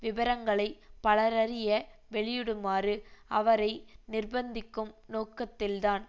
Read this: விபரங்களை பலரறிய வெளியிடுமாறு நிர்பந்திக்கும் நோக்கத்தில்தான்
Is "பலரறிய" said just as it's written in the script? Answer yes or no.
yes